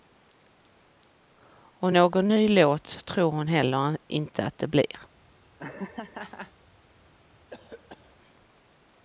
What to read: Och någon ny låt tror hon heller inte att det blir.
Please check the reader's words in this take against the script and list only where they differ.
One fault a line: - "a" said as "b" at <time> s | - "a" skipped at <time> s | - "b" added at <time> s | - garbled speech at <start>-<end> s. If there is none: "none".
none